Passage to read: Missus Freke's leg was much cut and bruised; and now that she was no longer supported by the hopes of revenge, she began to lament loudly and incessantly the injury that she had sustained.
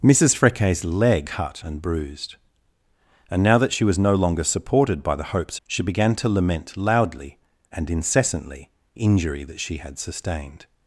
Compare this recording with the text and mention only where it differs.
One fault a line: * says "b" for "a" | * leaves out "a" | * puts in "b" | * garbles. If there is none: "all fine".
* leaves out "was much"
* leaves out "of revenge"
* leaves out "the"